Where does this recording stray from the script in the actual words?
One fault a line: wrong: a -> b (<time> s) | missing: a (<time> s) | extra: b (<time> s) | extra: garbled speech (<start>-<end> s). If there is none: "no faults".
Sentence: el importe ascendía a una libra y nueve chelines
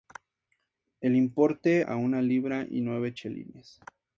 missing: ascendía (1.9 s)